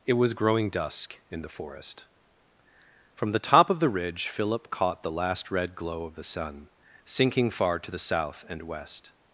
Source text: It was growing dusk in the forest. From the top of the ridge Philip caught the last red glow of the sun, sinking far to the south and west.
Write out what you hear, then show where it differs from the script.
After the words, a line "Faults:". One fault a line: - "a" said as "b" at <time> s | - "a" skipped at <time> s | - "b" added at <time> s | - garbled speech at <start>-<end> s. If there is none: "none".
It was growing dusk in the forest. From the top of the ridge Philip caught the last red glow of the sun, sinking far to the south and west.
Faults:
none